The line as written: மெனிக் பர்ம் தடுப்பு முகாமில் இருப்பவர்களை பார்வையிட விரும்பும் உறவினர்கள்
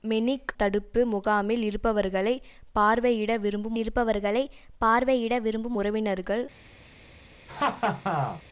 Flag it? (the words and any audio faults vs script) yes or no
yes